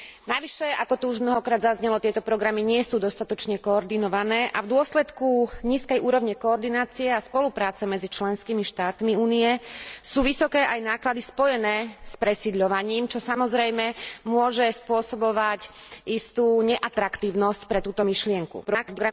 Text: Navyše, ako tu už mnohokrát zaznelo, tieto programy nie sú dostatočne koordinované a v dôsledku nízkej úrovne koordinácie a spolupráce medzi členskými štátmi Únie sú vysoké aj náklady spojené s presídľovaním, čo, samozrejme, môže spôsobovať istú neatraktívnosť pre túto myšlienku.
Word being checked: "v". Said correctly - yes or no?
yes